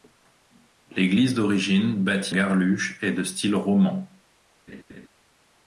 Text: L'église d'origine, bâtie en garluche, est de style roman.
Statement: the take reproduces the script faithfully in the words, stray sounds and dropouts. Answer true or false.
false